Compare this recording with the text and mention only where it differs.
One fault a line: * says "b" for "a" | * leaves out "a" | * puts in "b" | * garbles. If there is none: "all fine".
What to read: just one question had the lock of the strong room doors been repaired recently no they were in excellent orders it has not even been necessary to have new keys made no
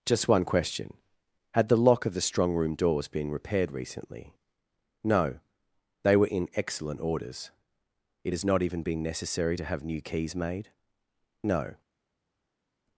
all fine